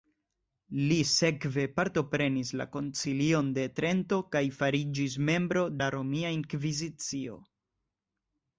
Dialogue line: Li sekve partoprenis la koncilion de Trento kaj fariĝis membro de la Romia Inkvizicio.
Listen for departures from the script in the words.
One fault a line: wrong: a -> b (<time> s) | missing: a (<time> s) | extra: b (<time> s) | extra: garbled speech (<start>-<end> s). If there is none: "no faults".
missing: de (5.7 s)